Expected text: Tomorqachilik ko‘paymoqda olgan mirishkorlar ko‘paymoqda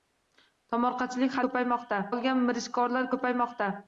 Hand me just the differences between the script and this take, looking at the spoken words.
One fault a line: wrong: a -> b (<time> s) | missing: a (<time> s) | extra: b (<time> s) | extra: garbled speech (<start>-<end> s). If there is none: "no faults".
no faults